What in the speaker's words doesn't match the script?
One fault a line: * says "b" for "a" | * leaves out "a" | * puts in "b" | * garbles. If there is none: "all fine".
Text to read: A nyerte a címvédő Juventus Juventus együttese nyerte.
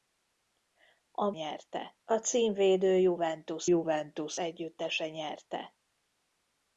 all fine